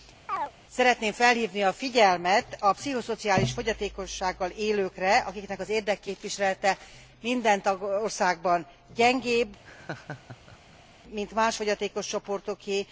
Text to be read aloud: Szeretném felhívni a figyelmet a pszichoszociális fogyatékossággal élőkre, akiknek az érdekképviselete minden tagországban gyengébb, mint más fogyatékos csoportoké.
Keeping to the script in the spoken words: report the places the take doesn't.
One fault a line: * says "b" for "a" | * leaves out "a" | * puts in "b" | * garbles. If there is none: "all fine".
all fine